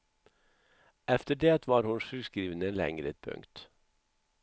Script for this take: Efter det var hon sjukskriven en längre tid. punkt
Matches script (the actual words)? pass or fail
fail